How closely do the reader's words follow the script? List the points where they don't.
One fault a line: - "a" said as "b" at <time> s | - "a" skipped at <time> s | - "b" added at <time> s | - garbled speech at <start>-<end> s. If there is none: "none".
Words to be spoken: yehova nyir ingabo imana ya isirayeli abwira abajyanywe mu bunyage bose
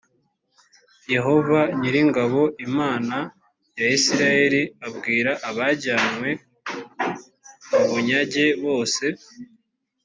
none